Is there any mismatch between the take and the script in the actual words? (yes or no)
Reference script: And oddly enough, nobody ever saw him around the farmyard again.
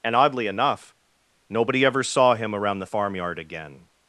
no